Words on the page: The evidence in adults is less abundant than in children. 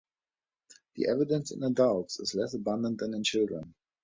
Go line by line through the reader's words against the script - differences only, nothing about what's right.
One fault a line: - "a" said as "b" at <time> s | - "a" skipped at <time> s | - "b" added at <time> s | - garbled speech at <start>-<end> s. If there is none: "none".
none